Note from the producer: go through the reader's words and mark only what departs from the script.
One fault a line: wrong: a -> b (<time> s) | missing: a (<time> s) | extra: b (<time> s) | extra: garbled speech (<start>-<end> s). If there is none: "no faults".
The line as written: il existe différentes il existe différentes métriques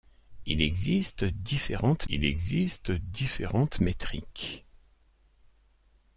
no faults